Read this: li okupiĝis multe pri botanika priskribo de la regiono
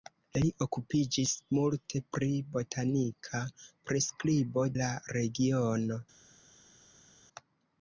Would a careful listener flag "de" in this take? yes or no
yes